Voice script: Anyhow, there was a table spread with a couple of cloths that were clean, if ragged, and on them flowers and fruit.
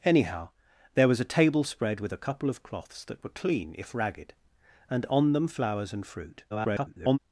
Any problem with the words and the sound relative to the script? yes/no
yes